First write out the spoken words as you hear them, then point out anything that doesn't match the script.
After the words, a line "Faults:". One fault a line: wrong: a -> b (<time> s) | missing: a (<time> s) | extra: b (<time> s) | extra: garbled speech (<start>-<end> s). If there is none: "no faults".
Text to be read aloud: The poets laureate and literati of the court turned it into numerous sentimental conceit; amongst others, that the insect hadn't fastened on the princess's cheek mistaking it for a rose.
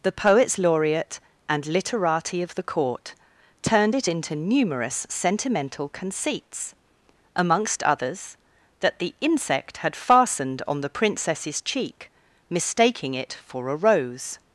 The poets laureate and literati of the court turned it into numerous sentimental conceits; amongst others, that the insect had fastened on the princess's cheek mistaking it for a rose.
Faults:
wrong: conceit -> conceits (5.9 s)
wrong: hadn't -> had (9.8 s)